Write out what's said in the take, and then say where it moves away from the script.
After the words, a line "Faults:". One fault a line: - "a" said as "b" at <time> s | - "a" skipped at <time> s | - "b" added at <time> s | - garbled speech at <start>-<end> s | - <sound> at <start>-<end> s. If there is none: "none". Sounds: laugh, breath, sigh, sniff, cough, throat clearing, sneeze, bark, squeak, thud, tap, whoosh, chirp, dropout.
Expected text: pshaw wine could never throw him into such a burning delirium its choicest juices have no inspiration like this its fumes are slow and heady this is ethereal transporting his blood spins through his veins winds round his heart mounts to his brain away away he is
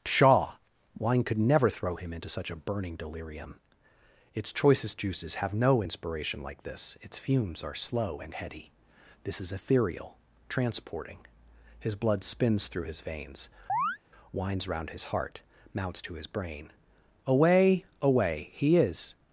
pshaw wine could never throw him into such a burning delirium its choicest juices have no inspiration like this its fumes are slow and heady this is ethereal transporting his blood spins through his veins winds round his heart mounts to his brain away away he is
Faults:
- chirp at 13.7-14.0 s